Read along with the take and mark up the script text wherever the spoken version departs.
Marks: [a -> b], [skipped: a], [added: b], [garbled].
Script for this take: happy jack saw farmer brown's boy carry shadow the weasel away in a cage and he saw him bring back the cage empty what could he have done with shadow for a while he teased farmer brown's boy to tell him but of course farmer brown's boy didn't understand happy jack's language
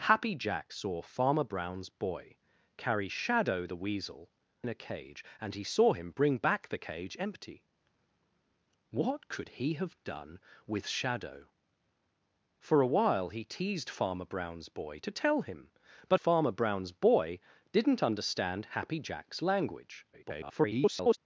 happy jack saw farmer brown's boy carry shadow the weasel [skipped: away] in a cage and he saw him bring back the cage empty what could he have done with shadow for a while he teased farmer brown's boy to tell him but [skipped: of course] farmer brown's boy didn't understand happy jack's language [garbled]